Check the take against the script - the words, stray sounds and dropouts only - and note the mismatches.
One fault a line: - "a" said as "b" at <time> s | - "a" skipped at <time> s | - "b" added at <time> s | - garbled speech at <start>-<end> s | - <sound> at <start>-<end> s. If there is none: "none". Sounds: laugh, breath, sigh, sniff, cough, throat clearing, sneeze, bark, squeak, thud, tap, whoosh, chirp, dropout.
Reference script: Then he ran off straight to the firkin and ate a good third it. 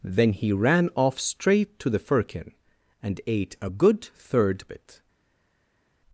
none